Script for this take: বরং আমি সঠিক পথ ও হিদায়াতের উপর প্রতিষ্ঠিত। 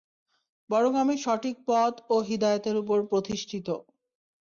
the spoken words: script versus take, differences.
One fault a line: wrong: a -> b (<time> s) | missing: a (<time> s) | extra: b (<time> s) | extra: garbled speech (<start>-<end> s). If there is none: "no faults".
no faults